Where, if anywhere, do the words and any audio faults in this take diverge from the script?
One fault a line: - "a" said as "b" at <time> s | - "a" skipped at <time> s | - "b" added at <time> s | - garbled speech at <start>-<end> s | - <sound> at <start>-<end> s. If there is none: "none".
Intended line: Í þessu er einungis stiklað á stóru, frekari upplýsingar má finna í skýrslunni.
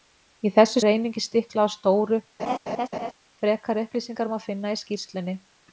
- laugh at 2.4-3.1 s